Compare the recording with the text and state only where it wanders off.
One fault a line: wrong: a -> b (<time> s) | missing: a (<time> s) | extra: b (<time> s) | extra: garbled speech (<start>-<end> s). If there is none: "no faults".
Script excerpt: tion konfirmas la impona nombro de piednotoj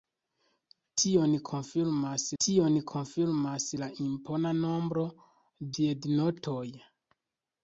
extra: tion konfirmas (2.4 s)
missing: de (5.1 s)